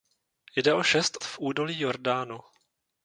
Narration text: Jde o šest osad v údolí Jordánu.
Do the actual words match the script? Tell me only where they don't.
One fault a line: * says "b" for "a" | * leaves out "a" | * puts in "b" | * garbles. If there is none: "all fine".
* leaves out "osad"